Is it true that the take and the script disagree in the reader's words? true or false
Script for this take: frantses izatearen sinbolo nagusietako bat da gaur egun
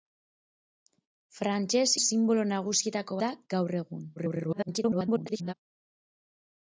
true